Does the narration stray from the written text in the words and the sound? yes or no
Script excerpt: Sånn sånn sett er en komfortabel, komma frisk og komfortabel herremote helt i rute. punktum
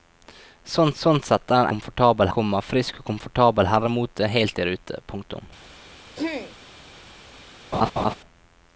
yes